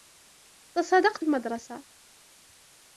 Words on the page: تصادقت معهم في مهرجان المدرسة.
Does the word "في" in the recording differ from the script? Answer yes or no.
yes